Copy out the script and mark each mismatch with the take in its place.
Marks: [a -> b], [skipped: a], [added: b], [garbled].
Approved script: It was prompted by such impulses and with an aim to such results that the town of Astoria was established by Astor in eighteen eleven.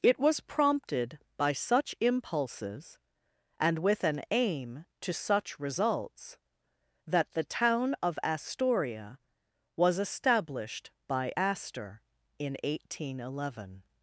It was prompted by such impulses and with an aim to such results that the town of Astoria was established by Astor in eighteen eleven.